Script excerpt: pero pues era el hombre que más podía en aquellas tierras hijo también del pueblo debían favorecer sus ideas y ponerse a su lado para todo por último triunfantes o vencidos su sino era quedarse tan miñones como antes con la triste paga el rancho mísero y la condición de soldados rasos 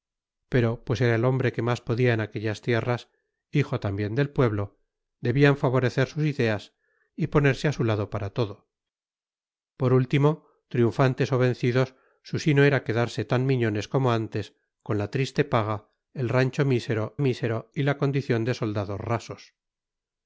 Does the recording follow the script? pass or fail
fail